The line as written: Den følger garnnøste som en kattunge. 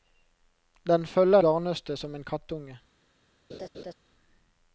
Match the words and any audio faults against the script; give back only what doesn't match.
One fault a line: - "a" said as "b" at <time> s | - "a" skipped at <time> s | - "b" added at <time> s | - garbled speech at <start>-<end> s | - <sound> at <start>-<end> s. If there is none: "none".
- laugh at 3.5-3.9 s